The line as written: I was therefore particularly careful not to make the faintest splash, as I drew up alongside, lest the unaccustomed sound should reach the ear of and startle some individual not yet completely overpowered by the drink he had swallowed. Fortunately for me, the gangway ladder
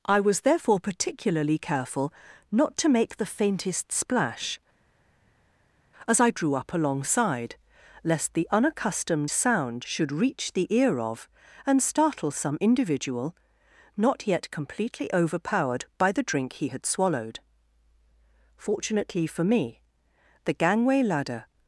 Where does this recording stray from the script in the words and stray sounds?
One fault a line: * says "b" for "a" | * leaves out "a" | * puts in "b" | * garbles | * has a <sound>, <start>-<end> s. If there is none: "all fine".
all fine